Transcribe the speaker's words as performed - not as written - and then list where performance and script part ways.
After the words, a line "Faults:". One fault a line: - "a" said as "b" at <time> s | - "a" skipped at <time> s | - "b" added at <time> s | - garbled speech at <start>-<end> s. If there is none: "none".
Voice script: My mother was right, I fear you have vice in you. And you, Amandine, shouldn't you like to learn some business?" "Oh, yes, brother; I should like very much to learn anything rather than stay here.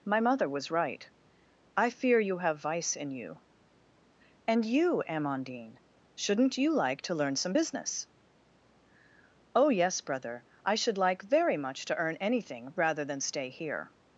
My mother was right, I fear you have vice in you. And you, Amandine, shouldn't you like to learn some business?" "Oh, yes, brother; I should like very much to earn anything rather than stay here.
Faults:
- "learn" said as "earn" at 12.0 s